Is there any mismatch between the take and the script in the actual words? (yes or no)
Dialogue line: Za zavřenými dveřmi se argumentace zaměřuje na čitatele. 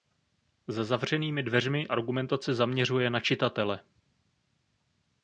yes